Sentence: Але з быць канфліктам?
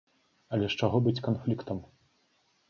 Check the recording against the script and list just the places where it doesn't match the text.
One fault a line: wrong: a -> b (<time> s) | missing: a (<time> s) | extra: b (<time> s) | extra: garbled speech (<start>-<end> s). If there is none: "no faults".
extra: чаго (0.8 s)